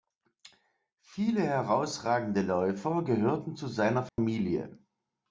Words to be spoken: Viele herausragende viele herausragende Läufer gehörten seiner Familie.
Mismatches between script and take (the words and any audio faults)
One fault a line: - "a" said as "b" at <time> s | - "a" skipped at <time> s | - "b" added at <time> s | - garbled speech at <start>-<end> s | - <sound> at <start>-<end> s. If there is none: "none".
- "viele herausragende" skipped at 2.4 s
- "zu" added at 3.5 s
- dropout at 4.1-4.2 s